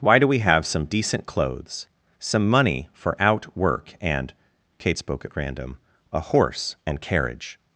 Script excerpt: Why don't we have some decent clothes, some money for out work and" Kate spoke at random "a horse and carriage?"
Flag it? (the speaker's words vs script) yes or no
yes